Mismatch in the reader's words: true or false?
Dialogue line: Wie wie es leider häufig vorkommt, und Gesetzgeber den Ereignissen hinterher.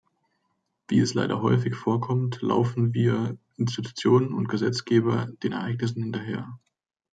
true